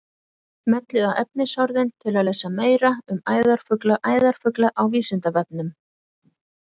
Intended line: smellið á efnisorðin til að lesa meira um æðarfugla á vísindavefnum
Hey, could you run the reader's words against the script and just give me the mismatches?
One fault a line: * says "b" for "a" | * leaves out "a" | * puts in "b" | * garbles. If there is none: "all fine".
* puts in "æðarfugla"